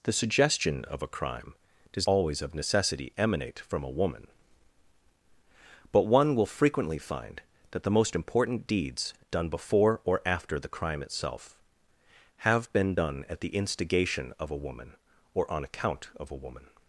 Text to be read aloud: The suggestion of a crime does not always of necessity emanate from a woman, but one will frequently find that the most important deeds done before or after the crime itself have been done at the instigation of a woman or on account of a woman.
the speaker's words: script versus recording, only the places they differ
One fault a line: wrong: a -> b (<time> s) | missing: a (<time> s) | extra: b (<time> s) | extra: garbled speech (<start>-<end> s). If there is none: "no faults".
missing: not (2.1 s)